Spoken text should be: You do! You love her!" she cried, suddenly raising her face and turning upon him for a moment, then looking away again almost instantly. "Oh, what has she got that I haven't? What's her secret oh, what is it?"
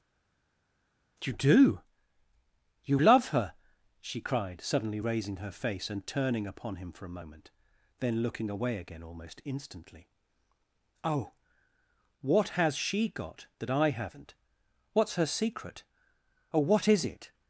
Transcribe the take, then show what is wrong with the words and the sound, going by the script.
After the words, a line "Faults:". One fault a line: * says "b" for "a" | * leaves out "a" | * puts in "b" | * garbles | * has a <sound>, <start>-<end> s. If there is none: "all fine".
You do! You love her!" she cried, suddenly raising her face and turning upon him for a moment, then looking away again almost instantly. "Oh, what has she got that I haven't? What's her secret oh, what is it?"
Faults:
all fine